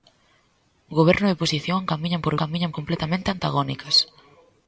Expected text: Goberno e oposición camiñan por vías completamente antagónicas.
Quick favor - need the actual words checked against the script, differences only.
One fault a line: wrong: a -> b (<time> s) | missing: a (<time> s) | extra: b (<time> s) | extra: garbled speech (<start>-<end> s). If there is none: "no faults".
wrong: vías -> camiñan (2.4 s)